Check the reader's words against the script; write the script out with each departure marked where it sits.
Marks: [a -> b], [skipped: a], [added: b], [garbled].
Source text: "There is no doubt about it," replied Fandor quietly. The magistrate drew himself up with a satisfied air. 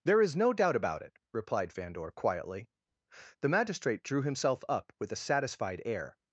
"There is no doubt about it," replied Fandor quietly. The magistrate drew himself up with a satisfied air.